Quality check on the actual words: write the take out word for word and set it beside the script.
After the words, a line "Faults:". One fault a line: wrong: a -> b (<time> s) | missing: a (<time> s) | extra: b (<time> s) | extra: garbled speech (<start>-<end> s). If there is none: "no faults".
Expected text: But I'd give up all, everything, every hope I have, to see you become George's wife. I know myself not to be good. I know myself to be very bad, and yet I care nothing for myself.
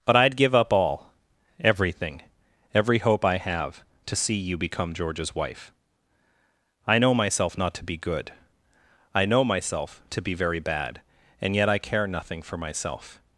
But I'd give up all, everything, every hope I have, to see you become George's wife. I know myself not to be good. I know myself to be very bad, and yet I care nothing for myself.
Faults:
no faults